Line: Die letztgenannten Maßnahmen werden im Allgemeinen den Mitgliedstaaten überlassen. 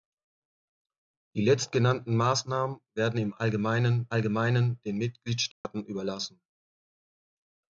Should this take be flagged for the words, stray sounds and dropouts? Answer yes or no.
yes